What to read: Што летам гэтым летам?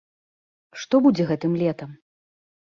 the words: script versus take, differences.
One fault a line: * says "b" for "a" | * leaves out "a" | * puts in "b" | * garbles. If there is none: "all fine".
* says "будзе" for "летам"